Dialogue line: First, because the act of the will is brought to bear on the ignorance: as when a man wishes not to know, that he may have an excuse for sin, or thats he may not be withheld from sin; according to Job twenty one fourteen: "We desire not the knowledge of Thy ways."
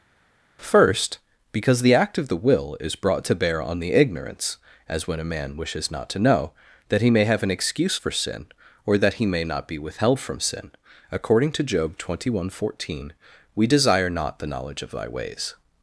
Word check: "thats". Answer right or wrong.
wrong